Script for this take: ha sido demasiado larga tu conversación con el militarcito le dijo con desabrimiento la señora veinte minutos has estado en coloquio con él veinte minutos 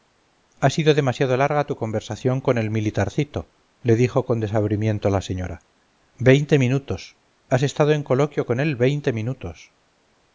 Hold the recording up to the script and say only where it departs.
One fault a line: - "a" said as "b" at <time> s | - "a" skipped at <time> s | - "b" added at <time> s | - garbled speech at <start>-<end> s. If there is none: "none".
none